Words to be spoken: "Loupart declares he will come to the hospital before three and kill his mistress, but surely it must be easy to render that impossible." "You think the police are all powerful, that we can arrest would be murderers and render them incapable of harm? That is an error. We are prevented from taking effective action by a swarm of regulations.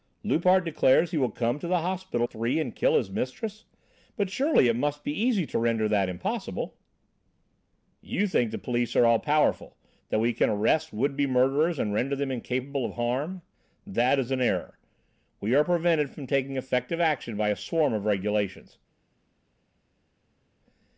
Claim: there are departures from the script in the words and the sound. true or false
true